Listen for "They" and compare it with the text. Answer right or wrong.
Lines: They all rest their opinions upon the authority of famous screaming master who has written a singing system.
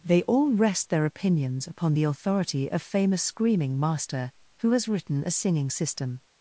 right